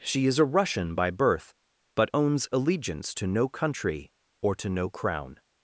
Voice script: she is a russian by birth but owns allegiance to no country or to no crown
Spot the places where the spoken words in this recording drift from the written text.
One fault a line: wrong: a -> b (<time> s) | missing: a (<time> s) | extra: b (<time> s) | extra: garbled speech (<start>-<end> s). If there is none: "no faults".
no faults